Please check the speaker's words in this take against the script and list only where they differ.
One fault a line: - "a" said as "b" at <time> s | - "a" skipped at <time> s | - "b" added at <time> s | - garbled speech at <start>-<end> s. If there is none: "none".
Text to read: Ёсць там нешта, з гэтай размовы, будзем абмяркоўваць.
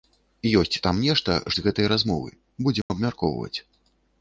none